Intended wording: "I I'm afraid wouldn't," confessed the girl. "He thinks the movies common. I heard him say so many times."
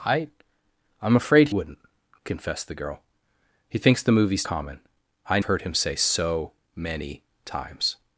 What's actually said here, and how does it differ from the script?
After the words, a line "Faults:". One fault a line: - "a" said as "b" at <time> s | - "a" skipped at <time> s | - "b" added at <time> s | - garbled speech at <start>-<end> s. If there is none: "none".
"I I'm afraid wouldn't," confessed the girl. "He thinks the movies common. I heard him say so many times."
Faults:
none